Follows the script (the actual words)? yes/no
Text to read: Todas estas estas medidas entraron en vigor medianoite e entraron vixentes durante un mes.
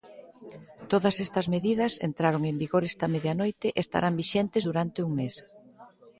no